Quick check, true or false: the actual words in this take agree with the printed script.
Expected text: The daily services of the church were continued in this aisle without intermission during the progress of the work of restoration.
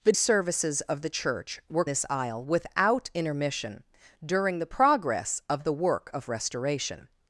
false